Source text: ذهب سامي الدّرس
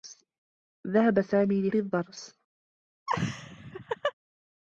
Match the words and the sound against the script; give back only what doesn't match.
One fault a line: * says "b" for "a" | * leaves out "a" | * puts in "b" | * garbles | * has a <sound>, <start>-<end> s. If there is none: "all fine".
* has a laugh, 3.1-4.1 s